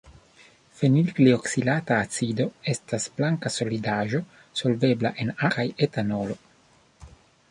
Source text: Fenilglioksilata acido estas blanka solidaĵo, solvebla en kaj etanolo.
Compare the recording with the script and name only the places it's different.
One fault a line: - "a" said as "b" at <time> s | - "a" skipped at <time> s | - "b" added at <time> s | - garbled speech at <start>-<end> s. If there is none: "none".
none